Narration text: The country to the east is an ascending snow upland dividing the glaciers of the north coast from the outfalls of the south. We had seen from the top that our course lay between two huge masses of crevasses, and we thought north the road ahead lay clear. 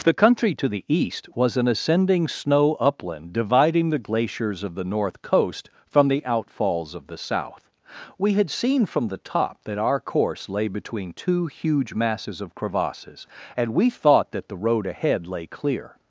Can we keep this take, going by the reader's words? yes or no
no